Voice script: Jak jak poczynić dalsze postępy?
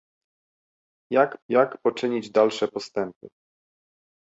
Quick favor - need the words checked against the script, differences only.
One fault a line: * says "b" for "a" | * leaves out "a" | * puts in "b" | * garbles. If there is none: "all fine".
all fine